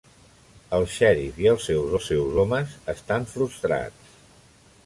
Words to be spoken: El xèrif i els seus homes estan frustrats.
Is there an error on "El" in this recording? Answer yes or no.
no